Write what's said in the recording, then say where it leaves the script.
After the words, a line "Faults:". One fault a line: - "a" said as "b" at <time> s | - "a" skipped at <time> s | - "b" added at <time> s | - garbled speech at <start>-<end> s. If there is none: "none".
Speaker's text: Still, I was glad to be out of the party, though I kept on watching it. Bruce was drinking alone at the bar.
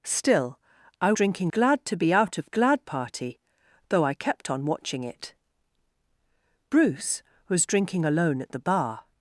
Still, I drinking glad to be out of glad party, though I kept on watching it. Bruce was drinking alone at the bar.
Faults:
- "was" said as "drinking" at 1.1 s
- "the" said as "glad" at 2.5 s